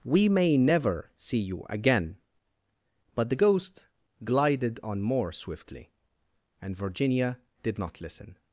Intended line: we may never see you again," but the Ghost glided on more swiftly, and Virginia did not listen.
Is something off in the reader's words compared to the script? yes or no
no